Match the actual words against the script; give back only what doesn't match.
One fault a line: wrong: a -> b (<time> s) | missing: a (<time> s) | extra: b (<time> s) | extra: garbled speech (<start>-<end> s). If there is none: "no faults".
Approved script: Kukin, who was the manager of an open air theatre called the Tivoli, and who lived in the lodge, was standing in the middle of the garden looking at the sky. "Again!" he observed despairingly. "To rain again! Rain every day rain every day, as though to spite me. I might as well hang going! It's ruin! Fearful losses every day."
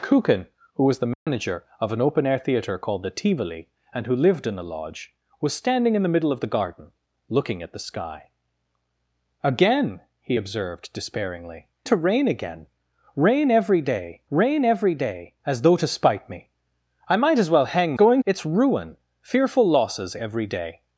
no faults